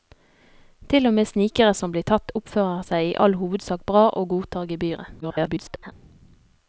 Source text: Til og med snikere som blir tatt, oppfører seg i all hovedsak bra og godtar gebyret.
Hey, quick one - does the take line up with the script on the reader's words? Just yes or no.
no